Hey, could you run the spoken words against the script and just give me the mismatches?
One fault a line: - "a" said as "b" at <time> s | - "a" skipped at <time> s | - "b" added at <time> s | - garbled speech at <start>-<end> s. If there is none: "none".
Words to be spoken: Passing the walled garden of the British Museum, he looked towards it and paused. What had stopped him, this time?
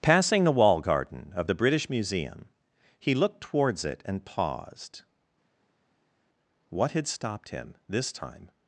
- "walled" said as "wall" at 0.5 s